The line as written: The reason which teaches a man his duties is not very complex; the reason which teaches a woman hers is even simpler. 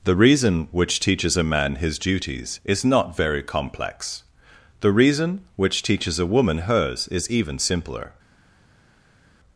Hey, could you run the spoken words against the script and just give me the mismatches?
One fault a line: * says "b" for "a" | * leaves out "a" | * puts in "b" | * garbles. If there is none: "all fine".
all fine